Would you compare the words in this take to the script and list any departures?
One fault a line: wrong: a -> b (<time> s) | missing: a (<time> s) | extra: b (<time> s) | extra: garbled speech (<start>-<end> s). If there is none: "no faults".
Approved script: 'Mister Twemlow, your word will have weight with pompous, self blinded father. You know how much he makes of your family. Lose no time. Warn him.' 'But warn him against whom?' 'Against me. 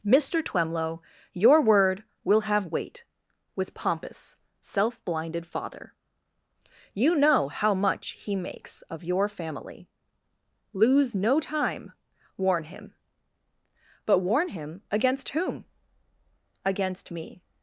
no faults